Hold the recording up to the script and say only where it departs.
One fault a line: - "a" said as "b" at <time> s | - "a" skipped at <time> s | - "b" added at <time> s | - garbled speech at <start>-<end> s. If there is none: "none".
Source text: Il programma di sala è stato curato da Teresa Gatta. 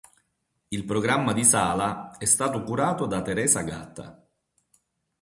none